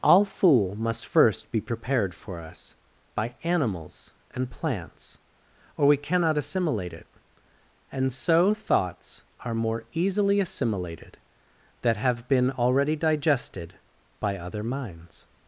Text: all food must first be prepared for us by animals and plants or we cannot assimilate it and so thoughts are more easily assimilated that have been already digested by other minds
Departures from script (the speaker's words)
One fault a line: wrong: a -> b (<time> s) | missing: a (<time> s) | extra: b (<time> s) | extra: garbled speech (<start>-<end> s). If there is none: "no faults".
wrong: food -> fool (0.2 s)